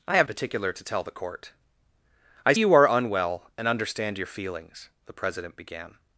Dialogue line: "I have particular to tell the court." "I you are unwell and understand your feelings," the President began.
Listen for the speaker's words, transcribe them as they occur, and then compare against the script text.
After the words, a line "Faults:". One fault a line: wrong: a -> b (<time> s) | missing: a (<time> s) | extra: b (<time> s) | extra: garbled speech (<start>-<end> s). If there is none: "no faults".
"I have particular to tell the court." "I you are unwell and understand your feelings," the President began.
Faults:
no faults